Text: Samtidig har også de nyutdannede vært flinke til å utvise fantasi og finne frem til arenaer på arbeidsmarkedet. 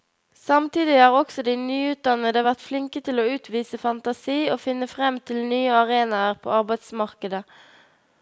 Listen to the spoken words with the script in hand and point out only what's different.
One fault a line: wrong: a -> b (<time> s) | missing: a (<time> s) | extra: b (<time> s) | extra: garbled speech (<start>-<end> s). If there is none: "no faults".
extra: nye (5.5 s)